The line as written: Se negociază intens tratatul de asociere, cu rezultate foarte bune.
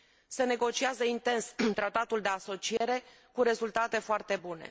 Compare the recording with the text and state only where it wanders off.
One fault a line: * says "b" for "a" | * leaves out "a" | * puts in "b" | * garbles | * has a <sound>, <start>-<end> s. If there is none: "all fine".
* has a dropout, 2.8-2.8 s